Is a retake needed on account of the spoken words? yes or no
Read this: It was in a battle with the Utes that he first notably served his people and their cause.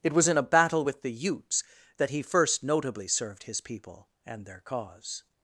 no